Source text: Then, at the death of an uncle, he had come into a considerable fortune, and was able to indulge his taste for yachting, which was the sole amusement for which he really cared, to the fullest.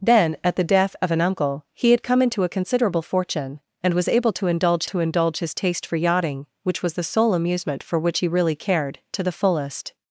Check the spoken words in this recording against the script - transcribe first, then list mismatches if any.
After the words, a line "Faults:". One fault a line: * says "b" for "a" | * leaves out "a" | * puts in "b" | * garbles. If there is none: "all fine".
Then, at the death of an uncle, he had come into a considerable fortune, and was able to indulge to indulge his taste for yachting, which was the sole amusement for which he really cared, to the fullest.
Faults:
* puts in "to indulge"